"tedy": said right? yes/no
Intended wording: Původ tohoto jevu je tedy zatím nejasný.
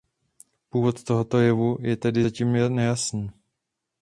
yes